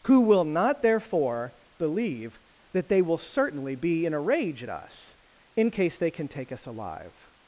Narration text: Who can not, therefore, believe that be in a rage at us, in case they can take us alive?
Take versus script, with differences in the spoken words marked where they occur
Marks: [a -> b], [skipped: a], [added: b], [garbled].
Who [can -> will] not, therefore, believe that [added: they will certainly] be in a rage at us, in case they can take us alive?